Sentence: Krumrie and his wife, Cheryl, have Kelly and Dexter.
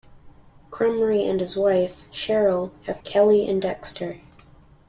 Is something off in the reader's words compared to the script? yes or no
no